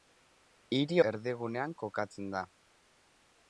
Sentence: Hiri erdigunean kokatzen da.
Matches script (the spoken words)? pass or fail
pass